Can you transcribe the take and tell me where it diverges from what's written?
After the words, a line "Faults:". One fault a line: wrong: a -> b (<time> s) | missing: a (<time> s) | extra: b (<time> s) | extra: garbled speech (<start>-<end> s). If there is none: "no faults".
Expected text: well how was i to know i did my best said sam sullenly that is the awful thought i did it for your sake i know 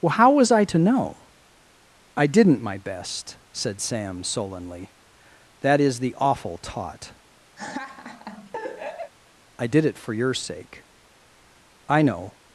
well how was i to know i didn't my best said sam sullenly that is the awful taught i did it for your sake i know
Faults:
wrong: did -> didn't (2.3 s)
wrong: thought -> taught (6.6 s)